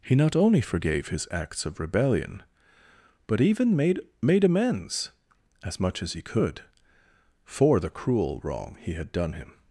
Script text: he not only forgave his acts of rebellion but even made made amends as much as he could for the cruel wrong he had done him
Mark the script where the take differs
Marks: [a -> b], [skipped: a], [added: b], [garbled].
he not only forgave his acts of rebellion but even made made amends as much as he could for the cruel wrong he had done him